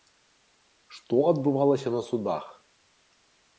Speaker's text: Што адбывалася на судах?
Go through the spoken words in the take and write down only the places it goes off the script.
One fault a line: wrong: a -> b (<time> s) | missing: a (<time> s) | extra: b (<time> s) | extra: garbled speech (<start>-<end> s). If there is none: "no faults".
no faults